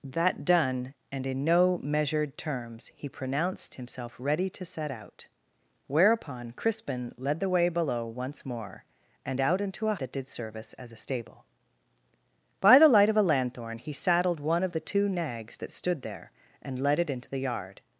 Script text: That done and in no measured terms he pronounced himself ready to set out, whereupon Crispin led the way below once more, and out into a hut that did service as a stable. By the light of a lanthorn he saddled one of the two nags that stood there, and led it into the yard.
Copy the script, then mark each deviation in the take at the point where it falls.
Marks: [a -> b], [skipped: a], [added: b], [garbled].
That done and in no measured terms he pronounced himself ready to set out, whereupon Crispin led the way below once more, and out into a [skipped: hut] that did service as a stable. By the light of a lanthorn he saddled one of the two nags that stood there, and led it into the yard.